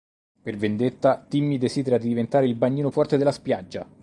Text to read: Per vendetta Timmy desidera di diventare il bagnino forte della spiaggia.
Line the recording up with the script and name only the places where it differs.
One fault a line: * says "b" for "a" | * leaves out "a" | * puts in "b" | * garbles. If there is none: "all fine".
all fine